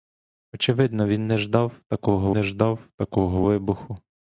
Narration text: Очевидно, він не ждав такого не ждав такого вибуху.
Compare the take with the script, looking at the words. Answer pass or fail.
pass